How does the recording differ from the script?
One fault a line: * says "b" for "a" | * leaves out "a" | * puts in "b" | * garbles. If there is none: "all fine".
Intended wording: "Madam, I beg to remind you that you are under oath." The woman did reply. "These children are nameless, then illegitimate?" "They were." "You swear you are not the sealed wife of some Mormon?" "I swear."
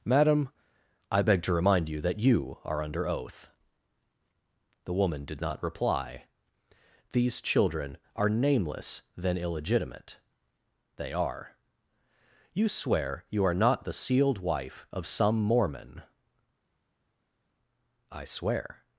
* puts in "not"
* says "are" for "were"